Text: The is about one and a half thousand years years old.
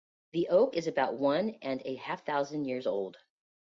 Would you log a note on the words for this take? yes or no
yes